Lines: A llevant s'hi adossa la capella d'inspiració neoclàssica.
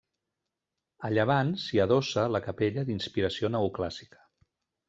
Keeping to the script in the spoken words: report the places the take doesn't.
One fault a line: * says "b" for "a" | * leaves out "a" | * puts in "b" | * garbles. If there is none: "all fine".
all fine